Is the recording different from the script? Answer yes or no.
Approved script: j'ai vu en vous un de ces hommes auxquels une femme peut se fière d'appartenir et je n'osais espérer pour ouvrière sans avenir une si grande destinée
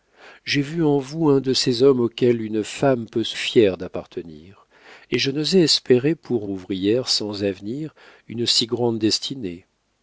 no